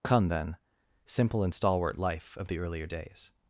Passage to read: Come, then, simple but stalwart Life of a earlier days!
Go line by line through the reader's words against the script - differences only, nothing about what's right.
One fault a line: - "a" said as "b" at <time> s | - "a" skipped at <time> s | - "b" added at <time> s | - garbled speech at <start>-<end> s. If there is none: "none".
- "but" said as "and" at 1.4 s
- "a" said as "the" at 2.5 s